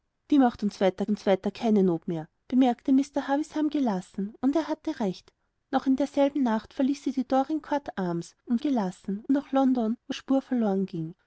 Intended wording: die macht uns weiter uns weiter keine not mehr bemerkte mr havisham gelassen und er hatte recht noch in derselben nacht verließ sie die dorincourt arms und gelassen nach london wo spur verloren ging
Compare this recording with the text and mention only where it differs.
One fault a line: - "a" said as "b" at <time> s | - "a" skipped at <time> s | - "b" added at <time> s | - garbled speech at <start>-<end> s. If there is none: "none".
none